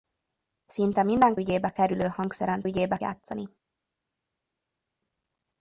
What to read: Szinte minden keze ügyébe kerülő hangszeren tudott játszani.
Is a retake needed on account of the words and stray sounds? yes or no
yes